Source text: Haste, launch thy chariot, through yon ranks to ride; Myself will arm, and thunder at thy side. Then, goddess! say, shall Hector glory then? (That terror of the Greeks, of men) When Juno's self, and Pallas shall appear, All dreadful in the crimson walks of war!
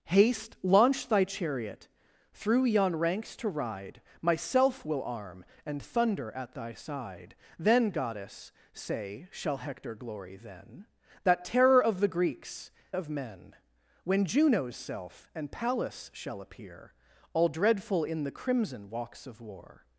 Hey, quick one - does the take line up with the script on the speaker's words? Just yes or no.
yes